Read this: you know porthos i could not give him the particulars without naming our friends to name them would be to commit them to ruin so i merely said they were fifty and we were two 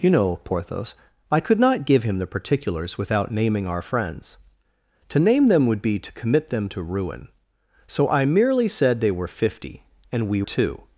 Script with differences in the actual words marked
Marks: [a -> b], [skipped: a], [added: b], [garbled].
you know porthos i could not give him the particulars without naming our friends to name them would be to commit them to ruin so i merely said they were fifty and we [skipped: were] two